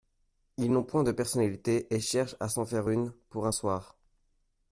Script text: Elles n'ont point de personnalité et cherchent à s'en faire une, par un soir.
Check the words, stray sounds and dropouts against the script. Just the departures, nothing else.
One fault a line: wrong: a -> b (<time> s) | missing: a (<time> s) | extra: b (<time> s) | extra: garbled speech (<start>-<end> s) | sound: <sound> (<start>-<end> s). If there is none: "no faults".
wrong: Elles -> Ils (0.6 s)
wrong: par -> pour (3.3 s)